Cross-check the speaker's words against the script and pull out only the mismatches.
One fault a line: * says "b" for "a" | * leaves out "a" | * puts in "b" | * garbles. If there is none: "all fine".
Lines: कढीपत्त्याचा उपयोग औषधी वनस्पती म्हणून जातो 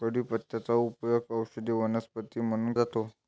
all fine